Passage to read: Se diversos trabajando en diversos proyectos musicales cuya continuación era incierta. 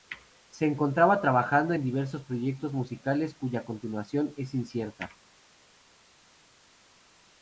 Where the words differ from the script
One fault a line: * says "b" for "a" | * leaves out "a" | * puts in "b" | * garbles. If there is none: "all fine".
* says "encontraba" for "diversos"
* says "es" for "era"